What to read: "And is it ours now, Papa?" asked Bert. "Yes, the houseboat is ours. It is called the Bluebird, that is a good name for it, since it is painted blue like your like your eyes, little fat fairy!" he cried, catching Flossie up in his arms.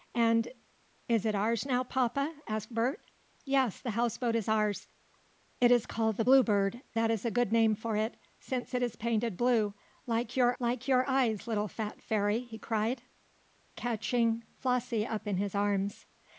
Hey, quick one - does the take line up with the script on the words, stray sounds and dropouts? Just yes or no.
yes